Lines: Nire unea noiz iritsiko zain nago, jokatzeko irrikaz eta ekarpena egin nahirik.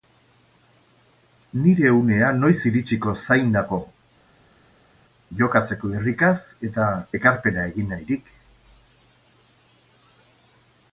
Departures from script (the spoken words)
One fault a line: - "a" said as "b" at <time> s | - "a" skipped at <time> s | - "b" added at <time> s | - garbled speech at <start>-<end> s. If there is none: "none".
none